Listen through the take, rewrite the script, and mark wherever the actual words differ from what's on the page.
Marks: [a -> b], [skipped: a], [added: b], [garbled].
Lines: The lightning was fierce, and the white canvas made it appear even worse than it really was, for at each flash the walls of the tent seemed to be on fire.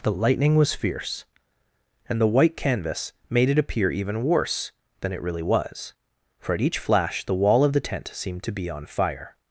The lightning was fierce, and the white canvas made it appear even worse than it really was, for at each flash the [walls -> wall] of the tent seemed to be on fire.